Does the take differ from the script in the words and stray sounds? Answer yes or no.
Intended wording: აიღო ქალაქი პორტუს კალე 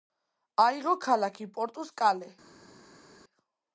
no